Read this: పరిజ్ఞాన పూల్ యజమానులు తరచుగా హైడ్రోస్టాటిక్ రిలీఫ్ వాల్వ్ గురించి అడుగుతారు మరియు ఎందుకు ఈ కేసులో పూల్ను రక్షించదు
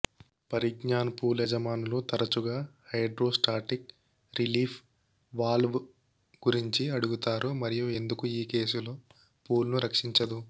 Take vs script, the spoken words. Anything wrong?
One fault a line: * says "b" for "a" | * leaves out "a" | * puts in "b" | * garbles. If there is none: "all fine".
all fine